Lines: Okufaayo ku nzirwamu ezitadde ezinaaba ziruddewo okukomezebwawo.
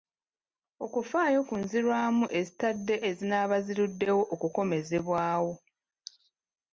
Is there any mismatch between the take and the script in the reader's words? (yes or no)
no